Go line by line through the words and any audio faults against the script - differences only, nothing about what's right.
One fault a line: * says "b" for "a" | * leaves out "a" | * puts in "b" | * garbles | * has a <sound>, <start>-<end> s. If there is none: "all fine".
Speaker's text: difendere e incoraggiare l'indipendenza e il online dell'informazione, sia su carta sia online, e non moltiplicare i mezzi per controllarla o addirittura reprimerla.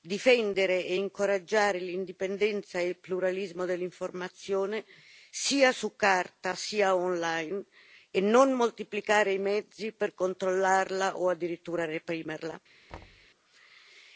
* says "pluralismo" for "online"
* has a thud, 12.9-13.3 s